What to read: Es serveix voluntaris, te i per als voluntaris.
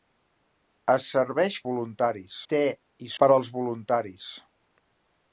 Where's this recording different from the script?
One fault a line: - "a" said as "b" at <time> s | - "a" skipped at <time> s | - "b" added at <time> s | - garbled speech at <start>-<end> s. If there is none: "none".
none